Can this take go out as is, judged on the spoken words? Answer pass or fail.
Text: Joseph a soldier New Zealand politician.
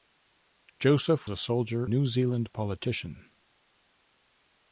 pass